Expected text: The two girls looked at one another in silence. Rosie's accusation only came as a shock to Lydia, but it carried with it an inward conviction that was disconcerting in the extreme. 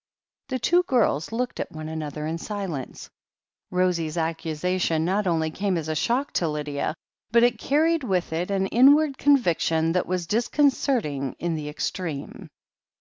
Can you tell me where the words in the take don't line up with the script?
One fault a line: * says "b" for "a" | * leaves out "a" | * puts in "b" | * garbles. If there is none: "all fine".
* puts in "not"